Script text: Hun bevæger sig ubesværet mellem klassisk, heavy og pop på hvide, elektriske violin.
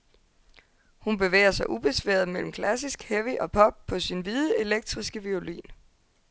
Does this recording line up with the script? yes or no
no